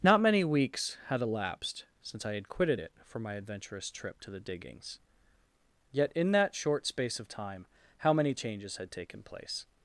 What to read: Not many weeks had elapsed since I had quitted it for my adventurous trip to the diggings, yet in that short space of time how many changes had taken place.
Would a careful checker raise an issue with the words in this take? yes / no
no